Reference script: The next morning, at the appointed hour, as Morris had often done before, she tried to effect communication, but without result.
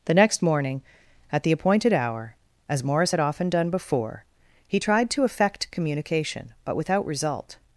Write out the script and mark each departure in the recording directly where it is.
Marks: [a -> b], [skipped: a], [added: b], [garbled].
The next morning, at the appointed hour, as Morris had often done before, [she -> he] tried to effect communication, but without result.